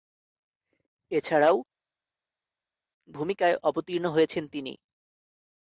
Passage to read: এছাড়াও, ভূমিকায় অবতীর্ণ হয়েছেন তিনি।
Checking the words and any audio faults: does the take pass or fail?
pass